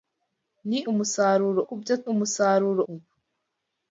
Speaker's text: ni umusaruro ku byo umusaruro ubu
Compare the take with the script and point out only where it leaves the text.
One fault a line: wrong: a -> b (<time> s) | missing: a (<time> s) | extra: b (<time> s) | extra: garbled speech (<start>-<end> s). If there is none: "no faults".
no faults